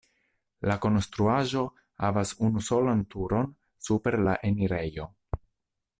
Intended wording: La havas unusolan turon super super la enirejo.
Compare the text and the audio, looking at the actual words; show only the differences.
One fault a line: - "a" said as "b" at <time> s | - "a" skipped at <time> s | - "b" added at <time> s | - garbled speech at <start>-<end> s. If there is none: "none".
- "konstruaĵo" added at 0.8 s
- "super" skipped at 4.2 s